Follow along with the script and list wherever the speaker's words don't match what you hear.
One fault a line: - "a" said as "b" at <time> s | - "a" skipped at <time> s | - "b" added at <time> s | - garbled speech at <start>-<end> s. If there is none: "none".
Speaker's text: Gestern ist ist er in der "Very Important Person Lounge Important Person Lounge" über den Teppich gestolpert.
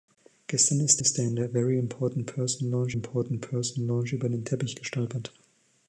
none